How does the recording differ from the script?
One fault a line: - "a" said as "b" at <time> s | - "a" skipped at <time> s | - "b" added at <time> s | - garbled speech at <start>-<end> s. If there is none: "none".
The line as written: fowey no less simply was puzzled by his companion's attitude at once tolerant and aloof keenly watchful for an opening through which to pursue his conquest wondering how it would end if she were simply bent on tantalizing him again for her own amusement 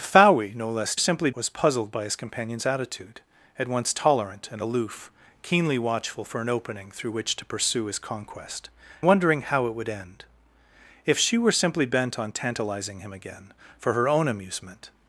none